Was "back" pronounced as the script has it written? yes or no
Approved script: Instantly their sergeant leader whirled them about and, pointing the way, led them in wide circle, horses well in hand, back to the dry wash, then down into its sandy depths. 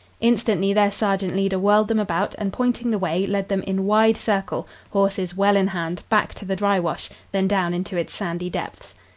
yes